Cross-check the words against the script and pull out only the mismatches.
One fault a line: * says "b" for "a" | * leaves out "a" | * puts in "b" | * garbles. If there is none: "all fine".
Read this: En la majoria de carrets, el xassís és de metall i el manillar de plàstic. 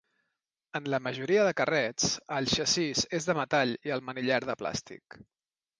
all fine